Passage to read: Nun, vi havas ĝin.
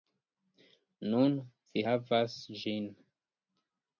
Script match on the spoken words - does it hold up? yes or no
yes